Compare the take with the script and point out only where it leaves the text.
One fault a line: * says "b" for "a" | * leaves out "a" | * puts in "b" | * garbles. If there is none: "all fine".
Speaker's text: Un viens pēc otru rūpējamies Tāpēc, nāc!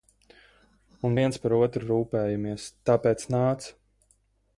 * says "par" for "pēc"